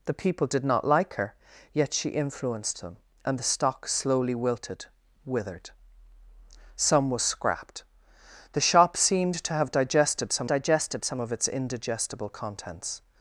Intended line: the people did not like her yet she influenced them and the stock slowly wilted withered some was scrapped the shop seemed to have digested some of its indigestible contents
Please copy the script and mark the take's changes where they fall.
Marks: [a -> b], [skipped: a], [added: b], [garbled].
the people did not like her yet she influenced them and the stock slowly wilted withered some was scrapped the shop seemed to have digested some [added: digested some] of its indigestible contents